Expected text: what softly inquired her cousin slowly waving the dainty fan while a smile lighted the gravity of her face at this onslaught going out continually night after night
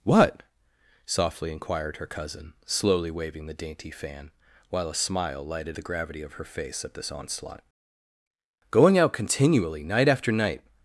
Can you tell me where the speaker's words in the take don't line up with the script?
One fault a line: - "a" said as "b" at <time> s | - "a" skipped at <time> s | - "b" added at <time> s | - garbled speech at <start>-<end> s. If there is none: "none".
none